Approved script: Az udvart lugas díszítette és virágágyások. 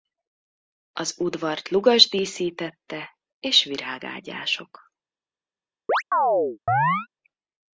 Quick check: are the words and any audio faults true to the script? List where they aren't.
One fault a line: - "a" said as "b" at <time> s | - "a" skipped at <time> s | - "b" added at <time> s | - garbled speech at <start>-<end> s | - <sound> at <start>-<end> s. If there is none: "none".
- chirp at 5.9-7.1 s